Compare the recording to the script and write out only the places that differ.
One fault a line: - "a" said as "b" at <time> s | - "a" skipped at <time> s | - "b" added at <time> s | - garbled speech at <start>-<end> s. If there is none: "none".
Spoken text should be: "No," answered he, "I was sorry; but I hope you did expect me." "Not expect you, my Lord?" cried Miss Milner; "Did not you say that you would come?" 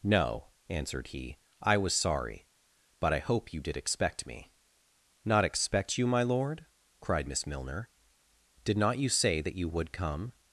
none